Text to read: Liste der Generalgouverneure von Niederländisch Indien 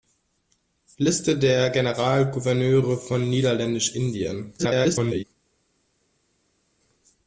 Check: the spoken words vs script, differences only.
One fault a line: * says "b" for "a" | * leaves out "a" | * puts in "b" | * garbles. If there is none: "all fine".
* garbles